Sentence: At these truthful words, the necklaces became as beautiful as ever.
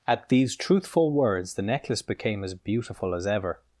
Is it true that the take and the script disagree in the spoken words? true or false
true